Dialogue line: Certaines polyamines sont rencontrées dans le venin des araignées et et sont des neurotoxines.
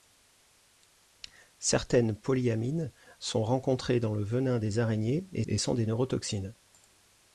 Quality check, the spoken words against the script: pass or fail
pass